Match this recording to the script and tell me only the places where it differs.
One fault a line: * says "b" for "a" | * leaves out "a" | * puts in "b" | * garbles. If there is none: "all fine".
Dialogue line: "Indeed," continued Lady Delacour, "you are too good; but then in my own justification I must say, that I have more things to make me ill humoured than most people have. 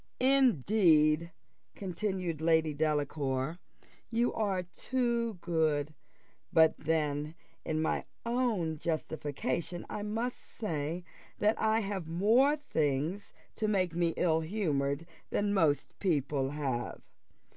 all fine